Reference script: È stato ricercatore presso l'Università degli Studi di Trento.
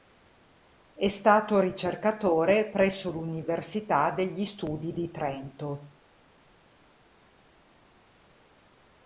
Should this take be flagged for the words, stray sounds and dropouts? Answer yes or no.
no